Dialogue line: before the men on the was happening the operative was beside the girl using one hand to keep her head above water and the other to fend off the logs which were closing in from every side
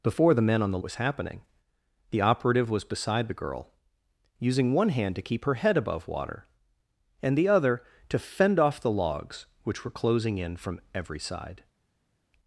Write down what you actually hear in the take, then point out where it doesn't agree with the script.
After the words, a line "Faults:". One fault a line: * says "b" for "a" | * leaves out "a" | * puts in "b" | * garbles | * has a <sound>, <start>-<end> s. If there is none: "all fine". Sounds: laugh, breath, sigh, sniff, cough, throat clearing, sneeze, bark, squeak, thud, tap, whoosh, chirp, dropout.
before the men on the was happening the operative was beside the girl using one hand to keep her head above water and the other to fend off the logs which were closing in from every side
Faults:
all fine